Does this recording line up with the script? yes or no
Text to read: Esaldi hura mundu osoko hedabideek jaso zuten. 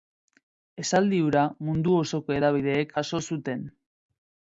yes